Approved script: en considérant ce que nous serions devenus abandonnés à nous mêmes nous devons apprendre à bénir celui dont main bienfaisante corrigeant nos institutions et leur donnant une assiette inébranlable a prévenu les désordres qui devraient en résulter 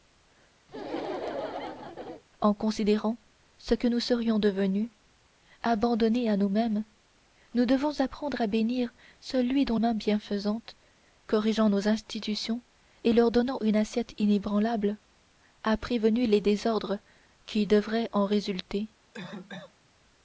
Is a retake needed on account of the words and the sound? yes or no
yes